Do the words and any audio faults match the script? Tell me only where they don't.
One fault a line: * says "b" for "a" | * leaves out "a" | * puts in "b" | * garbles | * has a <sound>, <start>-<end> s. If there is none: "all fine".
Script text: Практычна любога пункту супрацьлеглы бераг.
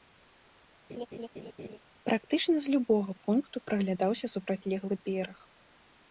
* has a laugh, 0.9-1.8 s
* puts in "з"
* puts in "праглядаўся"